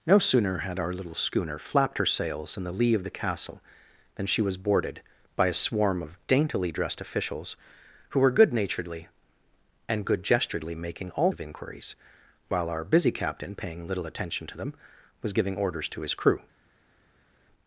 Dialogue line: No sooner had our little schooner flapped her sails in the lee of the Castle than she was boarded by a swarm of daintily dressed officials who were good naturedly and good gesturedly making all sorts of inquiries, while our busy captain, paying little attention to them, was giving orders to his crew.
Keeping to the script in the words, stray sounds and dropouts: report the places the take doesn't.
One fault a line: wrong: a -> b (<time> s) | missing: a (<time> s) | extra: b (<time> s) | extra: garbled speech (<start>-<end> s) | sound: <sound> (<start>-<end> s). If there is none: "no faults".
missing: sorts (11.3 s)